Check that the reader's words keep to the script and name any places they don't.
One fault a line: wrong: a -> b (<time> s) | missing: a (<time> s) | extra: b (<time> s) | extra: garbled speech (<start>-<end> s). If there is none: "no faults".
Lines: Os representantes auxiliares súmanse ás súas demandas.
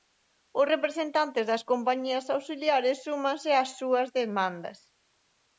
extra: das compañías (1.5 s)